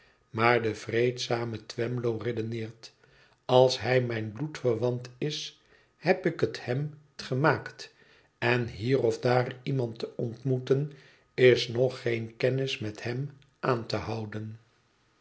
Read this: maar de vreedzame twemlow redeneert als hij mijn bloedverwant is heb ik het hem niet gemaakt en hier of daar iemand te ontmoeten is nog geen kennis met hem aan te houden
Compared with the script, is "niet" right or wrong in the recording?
wrong